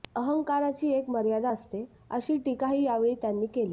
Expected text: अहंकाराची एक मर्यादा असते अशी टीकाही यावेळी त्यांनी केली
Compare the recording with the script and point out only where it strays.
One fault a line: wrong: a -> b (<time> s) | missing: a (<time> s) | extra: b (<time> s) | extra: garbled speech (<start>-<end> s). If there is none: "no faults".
no faults